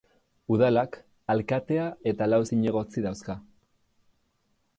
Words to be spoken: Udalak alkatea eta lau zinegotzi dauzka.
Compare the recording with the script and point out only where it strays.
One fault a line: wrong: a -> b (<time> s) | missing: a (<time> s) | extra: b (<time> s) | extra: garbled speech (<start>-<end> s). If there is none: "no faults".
no faults